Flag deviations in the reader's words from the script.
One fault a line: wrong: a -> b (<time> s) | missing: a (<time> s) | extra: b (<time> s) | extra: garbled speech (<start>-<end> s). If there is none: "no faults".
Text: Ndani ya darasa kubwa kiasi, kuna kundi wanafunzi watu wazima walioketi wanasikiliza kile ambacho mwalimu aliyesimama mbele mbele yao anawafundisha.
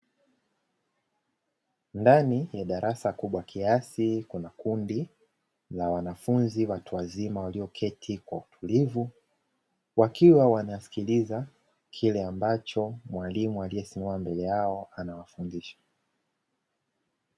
extra: la (5.7 s)
extra: kwa utulivu wakiwa (8.2 s)
missing: mbele (14.4 s)